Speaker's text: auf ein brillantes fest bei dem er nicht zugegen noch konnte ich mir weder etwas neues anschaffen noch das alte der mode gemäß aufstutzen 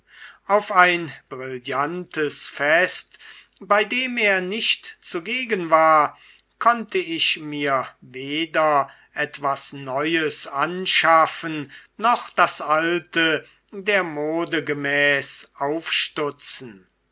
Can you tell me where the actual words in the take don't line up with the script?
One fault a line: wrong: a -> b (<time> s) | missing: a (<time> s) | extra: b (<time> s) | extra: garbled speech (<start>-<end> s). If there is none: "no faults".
wrong: noch -> war (5.7 s)